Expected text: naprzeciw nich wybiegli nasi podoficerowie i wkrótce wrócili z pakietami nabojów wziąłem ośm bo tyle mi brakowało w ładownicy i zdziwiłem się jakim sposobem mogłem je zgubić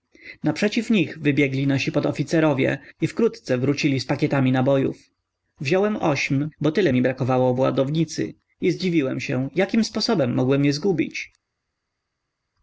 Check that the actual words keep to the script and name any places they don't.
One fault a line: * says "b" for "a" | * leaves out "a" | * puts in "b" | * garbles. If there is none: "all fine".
all fine